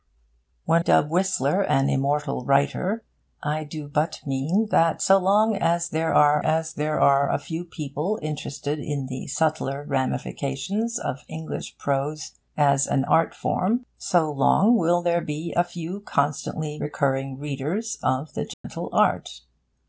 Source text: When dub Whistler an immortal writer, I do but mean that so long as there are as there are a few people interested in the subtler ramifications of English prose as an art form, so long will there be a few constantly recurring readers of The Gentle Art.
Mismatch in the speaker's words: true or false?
false